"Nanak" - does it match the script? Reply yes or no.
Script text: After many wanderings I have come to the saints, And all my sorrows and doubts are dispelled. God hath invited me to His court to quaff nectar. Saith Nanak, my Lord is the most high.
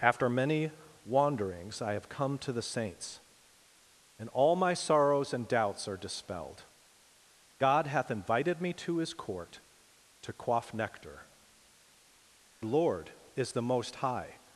no